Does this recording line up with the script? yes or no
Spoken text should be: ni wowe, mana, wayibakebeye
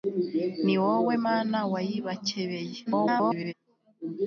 no